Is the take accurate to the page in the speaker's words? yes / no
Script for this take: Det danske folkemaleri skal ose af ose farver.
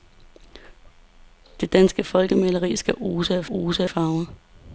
yes